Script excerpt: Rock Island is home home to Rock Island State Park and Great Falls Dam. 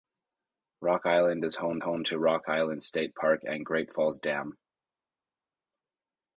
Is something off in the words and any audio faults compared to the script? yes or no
no